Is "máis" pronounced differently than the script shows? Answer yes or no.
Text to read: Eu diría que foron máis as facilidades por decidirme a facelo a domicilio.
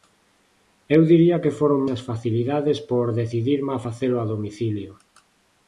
yes